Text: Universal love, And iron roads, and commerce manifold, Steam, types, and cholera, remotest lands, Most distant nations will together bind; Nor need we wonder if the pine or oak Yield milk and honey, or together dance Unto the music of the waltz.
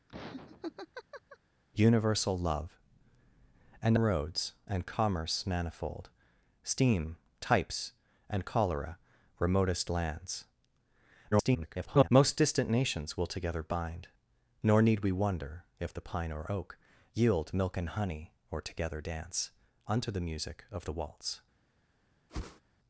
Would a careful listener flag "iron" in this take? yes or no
yes